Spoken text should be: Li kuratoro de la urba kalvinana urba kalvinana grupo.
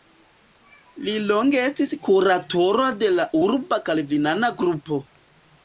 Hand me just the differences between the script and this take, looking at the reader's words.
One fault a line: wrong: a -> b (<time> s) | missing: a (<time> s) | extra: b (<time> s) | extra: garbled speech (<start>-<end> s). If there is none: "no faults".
extra: longe estis (1.3 s)
missing: urba kalvinana (4.5 s)